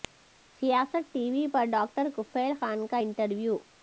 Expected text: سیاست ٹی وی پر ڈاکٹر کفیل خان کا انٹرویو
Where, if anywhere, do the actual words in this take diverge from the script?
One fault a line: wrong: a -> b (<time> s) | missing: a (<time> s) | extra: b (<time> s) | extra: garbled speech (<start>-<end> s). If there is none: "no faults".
no faults